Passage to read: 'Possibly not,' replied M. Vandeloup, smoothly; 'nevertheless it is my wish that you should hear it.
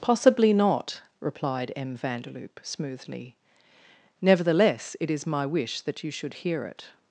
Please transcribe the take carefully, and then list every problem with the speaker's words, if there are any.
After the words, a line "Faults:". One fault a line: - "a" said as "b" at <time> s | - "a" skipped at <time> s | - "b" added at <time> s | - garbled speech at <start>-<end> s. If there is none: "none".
'Possibly not,' replied M. Vandeloup, smoothly; 'nevertheless it is my wish that you should hear it.
Faults:
none